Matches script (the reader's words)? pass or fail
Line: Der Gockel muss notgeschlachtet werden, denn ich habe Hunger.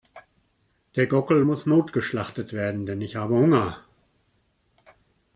pass